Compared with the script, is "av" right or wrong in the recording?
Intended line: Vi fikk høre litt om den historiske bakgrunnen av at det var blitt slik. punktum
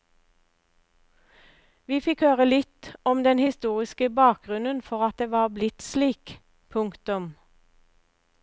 wrong